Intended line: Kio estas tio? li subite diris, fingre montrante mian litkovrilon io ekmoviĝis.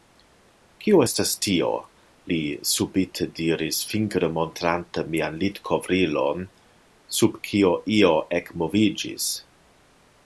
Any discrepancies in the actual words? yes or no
yes